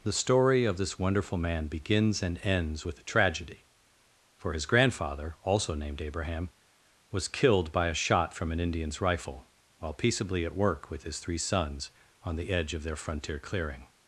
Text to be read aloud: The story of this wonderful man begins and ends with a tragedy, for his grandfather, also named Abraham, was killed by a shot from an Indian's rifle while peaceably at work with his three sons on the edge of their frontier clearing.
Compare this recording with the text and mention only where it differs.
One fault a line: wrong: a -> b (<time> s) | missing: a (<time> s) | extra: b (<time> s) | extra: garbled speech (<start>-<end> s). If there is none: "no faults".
no faults